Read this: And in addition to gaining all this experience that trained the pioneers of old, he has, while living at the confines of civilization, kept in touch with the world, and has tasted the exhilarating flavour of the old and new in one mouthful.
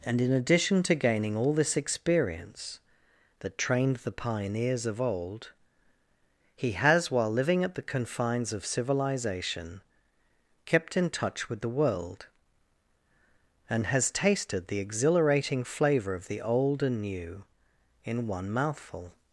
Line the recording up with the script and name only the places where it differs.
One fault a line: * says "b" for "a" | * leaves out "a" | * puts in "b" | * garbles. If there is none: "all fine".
all fine